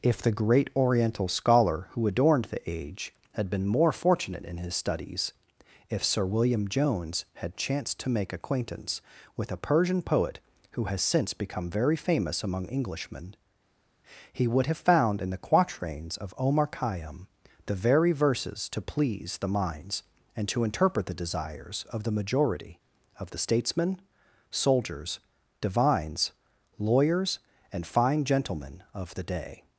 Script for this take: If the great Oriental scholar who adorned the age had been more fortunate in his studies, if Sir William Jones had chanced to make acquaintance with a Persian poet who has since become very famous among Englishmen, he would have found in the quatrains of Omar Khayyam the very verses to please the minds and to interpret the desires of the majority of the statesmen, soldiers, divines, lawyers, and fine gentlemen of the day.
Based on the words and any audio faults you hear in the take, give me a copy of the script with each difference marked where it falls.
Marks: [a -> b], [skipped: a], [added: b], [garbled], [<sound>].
If the great Oriental scholar who adorned the age had been more fortunate in his studies, if Sir William Jones had chanced to make acquaintance with a Persian poet who has since become very famous among Englishmen, he would have found in the quatrains of Omar Khayyam the very verses to please the minds and to interpret the desires of the majority of the statesmen, soldiers, divines, lawyers, and fine gentlemen of the day.